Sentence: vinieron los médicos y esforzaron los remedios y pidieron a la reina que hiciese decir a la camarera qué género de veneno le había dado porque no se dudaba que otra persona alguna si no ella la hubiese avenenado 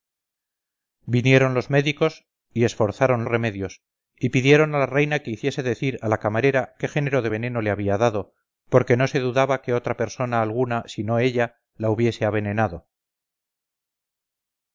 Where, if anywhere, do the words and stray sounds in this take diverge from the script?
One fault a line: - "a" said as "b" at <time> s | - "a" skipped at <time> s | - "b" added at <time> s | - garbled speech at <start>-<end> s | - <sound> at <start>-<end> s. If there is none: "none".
- "los" skipped at 3.2 s